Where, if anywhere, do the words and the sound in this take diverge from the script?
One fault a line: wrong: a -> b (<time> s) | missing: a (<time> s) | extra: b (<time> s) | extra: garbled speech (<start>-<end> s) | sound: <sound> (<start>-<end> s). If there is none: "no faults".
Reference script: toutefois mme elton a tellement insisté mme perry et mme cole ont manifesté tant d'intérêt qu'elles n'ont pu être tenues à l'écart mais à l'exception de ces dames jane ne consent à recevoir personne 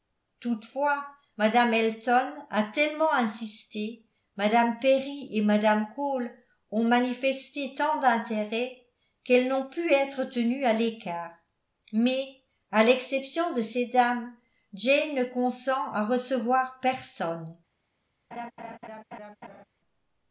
sound: laugh (18.3-19.6 s)